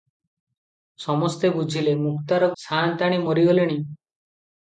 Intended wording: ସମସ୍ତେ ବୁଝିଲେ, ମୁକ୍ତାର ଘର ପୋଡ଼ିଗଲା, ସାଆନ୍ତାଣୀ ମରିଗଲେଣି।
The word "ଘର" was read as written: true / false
false